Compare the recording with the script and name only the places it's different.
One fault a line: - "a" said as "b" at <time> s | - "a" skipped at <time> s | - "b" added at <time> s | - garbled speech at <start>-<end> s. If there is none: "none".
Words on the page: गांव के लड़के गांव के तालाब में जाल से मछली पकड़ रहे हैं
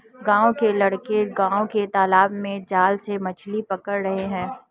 none